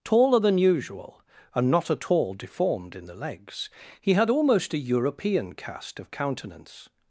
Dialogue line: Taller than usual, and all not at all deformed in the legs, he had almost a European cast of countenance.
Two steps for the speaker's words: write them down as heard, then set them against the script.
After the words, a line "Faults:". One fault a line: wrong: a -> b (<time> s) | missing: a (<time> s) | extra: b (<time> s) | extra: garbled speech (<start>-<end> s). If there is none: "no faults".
Taller than usual, and not at all deformed in the legs, he had almost a European cast of countenance.
Faults:
missing: all (1.7 s)